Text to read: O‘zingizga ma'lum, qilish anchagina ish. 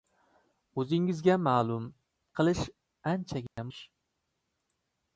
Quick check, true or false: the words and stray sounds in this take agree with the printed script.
false